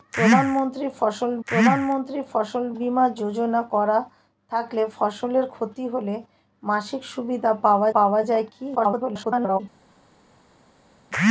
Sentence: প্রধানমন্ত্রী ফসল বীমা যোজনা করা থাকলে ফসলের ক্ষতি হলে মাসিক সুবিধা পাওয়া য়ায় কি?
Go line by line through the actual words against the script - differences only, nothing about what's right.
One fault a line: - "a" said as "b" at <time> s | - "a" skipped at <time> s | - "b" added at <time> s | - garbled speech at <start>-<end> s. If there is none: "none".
- "প্রধানমন্ত্রী ফসল" added at 1.5 s
- "পাওয়া" added at 7.9 s
- garbled speech at 8.7-9.6 s